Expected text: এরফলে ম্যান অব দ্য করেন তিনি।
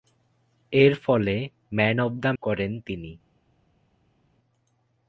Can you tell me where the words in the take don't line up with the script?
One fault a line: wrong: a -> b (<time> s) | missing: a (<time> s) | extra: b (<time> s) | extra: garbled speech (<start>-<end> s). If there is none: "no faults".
no faults